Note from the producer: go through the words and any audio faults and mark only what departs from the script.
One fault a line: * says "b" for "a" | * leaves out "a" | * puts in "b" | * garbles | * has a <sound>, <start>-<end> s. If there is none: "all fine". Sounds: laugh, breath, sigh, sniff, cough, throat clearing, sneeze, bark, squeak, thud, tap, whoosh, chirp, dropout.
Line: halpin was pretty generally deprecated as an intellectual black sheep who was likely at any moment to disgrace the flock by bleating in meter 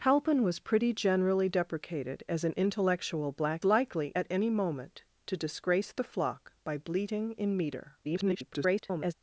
* leaves out "sheep who was"
* garbles